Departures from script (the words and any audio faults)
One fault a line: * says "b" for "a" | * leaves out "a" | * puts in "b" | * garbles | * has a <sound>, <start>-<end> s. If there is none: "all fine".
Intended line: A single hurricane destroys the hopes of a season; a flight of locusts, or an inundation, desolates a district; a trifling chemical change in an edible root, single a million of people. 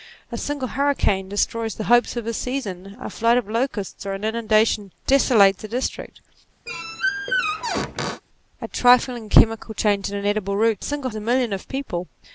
* has a squeak, 6.7-8.2 s